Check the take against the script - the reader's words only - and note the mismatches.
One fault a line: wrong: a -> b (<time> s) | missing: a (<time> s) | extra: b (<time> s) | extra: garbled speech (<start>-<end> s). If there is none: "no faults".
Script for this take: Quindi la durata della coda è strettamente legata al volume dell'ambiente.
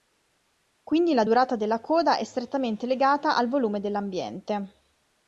no faults